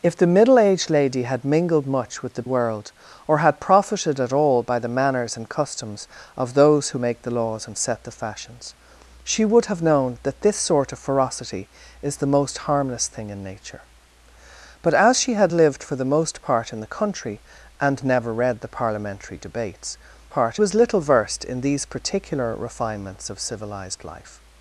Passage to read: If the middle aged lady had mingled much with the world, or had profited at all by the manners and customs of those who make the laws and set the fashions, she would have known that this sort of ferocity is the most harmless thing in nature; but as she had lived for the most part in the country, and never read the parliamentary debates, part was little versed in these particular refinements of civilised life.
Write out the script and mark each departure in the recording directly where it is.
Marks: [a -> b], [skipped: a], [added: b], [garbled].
If the middle aged lady had mingled much with the world, or had profited at all by the manners and customs of those who make the laws and set the fashions, she would have known that this sort of ferocity is the most harmless thing in nature; but as she had lived for the most part in the country, and never read the parliamentary debates, part was little versed in these particular refinements of civilised life.